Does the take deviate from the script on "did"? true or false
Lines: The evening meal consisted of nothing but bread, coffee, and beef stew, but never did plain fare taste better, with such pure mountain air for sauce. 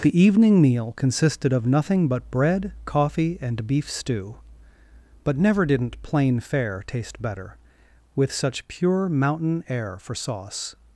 true